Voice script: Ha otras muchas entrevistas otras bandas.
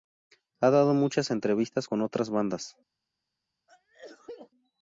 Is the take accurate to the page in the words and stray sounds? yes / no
no